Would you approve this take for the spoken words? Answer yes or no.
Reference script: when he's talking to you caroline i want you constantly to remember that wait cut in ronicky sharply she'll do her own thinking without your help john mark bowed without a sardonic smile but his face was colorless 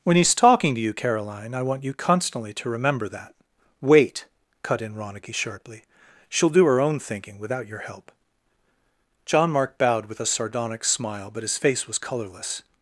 no